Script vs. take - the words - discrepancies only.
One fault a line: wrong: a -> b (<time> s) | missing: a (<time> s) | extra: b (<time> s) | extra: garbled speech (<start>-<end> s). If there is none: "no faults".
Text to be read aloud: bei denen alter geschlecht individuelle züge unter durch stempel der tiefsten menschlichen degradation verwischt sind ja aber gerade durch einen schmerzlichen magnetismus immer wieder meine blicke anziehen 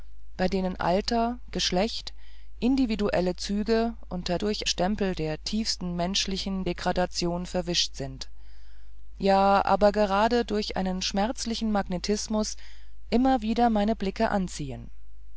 no faults